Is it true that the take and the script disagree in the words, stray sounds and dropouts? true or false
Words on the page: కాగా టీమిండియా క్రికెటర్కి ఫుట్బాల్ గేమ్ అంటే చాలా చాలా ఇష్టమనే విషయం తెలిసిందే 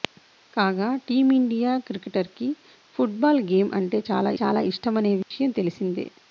true